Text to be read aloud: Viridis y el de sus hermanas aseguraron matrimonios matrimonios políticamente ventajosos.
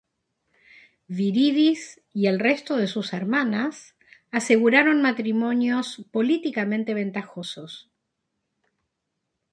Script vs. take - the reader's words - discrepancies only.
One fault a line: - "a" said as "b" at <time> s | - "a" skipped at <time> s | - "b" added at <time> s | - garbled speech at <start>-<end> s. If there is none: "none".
- "resto" added at 2.4 s
- "matrimonios" skipped at 6.0 s